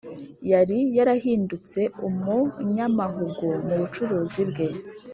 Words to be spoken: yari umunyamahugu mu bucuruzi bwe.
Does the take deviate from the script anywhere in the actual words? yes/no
yes